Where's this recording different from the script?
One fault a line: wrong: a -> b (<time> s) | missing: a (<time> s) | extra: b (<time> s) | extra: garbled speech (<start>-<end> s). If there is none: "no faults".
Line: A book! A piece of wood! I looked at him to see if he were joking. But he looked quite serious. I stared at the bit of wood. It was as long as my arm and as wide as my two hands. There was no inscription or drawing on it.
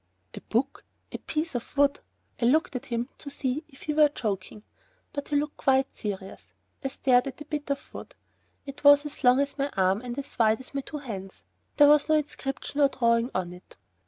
no faults